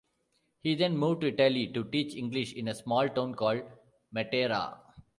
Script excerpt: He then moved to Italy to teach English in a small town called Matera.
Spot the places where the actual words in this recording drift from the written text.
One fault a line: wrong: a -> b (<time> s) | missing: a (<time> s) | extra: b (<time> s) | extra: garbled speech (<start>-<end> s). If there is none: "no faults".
no faults